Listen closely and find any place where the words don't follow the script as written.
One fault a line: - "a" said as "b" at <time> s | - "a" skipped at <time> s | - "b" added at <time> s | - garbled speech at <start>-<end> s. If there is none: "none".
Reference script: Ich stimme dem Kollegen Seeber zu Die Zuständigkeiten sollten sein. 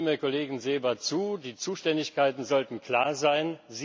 - "klar" added at 2.8 s